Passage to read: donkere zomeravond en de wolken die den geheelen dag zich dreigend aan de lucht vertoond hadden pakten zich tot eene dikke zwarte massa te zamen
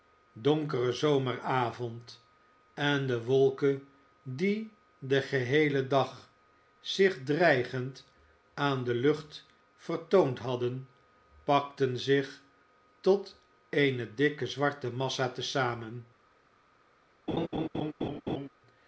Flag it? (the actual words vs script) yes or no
no